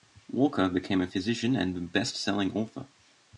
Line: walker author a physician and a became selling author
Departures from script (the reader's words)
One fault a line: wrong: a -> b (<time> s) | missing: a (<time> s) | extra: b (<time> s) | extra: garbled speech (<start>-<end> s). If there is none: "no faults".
wrong: author -> became (0.7 s)
wrong: became -> best (1.8 s)